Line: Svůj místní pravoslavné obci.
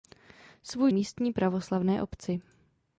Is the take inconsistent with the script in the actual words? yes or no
no